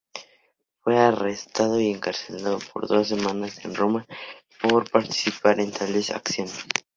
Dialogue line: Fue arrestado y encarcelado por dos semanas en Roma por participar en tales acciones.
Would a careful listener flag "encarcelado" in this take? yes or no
no